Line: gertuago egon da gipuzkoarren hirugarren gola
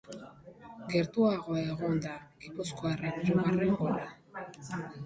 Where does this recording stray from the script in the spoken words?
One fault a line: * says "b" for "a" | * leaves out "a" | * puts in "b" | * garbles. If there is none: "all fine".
all fine